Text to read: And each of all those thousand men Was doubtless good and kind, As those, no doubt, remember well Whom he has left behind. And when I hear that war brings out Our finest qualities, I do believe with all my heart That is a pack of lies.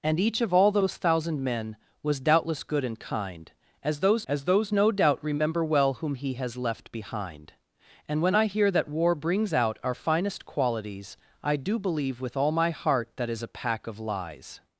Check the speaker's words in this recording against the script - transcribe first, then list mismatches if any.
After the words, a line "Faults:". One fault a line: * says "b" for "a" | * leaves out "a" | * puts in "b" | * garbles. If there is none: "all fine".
And each of all those thousand men Was doubtless good and kind, As those As those, no doubt, remember well Whom he has left behind. And when I hear that war brings out Our finest qualities, I do believe with all my heart That is a pack of lies.
Faults:
* puts in "As those"